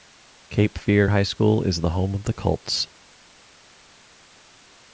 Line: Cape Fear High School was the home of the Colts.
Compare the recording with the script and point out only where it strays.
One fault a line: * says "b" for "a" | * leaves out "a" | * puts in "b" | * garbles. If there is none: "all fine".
* says "is" for "was"